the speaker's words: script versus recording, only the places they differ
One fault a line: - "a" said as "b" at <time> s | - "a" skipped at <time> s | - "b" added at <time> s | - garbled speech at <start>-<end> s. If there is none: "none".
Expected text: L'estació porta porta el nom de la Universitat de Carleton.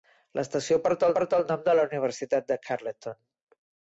none